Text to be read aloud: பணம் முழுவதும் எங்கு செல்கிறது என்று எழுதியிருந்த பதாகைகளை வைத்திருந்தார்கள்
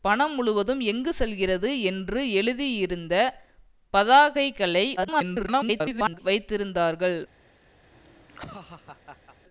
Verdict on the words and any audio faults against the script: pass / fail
fail